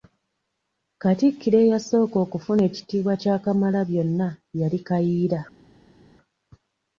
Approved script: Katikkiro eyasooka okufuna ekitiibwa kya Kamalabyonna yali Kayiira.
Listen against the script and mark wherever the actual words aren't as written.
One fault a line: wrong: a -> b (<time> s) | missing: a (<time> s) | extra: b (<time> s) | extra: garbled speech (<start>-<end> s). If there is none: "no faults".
no faults